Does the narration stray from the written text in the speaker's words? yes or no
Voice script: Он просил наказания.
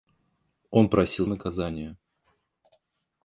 no